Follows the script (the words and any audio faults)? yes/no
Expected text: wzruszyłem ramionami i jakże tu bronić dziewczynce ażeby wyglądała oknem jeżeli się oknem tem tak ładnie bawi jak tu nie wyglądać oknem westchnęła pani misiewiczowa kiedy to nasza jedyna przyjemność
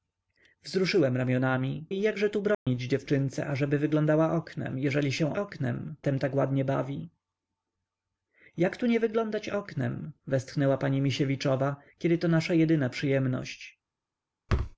no